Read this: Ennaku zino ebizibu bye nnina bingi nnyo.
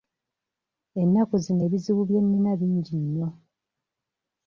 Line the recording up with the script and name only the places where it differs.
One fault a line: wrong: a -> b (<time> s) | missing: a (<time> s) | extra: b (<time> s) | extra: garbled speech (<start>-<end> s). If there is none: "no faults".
no faults